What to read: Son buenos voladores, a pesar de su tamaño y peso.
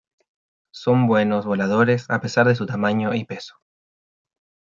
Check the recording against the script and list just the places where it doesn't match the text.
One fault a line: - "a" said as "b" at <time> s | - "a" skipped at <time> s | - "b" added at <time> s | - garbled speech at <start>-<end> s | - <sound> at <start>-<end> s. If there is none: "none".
none